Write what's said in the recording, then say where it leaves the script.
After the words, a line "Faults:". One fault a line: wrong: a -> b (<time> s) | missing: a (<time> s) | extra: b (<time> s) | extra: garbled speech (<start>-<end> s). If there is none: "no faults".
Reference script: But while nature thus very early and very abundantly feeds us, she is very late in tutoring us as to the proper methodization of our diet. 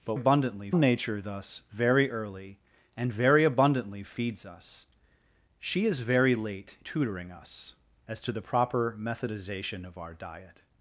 But abundantly nature thus very early and very abundantly feeds us, she is very late tutoring us as to the proper methodization of our diet.
Faults:
wrong: while -> abundantly (0.1 s)
missing: in (6.8 s)